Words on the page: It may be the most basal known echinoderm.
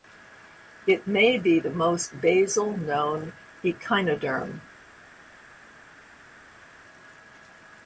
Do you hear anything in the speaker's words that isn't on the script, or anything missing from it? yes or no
no